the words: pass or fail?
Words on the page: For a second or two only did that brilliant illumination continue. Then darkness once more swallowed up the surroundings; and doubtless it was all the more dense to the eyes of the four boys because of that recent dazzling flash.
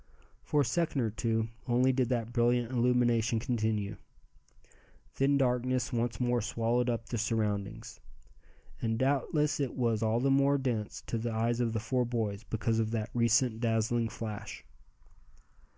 pass